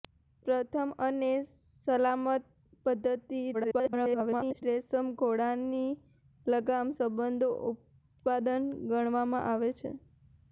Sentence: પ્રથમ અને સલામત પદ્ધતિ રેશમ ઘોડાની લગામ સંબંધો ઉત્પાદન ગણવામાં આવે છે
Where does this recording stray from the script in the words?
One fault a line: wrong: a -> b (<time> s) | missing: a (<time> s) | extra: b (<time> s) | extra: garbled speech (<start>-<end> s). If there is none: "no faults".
extra: garbled speech (3.5-4.6 s)